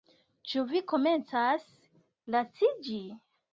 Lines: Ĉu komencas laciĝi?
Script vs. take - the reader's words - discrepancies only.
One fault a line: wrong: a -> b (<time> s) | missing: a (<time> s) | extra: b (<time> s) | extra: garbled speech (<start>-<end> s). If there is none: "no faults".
extra: vi (0.7 s)